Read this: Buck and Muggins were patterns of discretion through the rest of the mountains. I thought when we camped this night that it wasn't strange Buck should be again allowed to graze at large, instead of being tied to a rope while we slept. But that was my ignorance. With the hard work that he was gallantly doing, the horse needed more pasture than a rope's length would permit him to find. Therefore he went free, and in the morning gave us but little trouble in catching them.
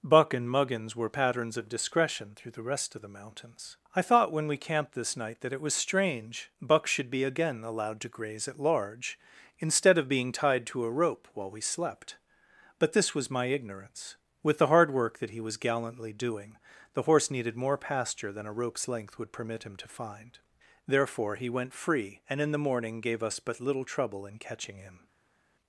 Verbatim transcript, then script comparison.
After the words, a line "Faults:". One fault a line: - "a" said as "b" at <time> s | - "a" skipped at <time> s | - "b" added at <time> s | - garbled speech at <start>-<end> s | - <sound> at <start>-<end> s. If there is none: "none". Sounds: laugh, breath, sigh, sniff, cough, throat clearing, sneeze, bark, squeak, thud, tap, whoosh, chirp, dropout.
Buck and Muggins were patterns of discretion through the rest of the mountains. I thought when we camped this night that it was strange Buck should be again allowed to graze at large, instead of being tied to a rope while we slept. But this was my ignorance. With the hard work that he was gallantly doing, the horse needed more pasture than a rope's length would permit him to find. Therefore he went free, and in the morning gave us but little trouble in catching him.
Faults:
- "wasn't" said as "was" at 5.6 s
- "that" said as "this" at 12.9 s
- "them" said as "him" at 24.8 s